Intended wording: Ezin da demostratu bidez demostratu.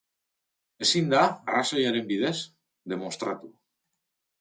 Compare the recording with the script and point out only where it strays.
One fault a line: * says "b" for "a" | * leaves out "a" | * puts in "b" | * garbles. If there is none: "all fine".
* says "arrazoiaren" for "demostratu"